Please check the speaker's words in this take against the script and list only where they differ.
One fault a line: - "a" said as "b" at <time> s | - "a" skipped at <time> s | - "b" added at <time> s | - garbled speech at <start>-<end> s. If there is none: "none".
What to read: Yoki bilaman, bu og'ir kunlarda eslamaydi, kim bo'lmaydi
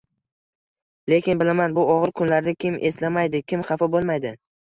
- "Yoki" said as "Lekin" at 1.1 s
- "kim" added at 2.7 s
- "xafa" added at 3.7 s